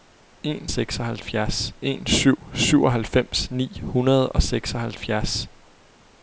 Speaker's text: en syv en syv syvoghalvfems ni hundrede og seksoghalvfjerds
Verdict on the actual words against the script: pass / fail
fail